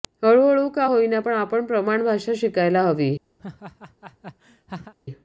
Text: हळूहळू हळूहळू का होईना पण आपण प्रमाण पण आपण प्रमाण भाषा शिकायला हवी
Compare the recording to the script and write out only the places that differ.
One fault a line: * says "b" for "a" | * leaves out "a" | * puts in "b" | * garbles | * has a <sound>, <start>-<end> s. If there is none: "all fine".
* leaves out "हळूहळू"
* leaves out "पण आपण प्रमाण"
* has a laugh, 3.4-4.9 s